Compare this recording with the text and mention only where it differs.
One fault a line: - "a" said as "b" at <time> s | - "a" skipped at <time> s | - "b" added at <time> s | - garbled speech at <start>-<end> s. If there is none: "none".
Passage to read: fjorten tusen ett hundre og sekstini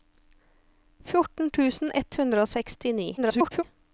- garbled speech at 3.2-3.6 s